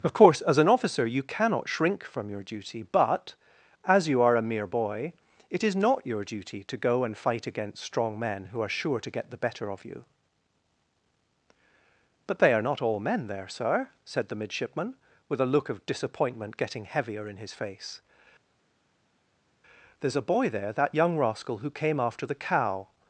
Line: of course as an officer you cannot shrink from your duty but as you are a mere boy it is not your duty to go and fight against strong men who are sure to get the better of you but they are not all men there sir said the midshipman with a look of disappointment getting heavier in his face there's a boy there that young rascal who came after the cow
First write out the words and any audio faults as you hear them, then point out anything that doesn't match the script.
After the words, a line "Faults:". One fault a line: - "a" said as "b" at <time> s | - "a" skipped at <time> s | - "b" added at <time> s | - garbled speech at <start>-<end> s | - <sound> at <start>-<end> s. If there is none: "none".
of course as an officer you cannot shrink from your duty but as you are a mere boy it is not your duty to go and fight against strong men who are sure to get the better of you but they are not all men there sir said the midshipman with a look of disappointment getting heavier in his face there's a boy there that young rascal who came after the cow
Faults:
none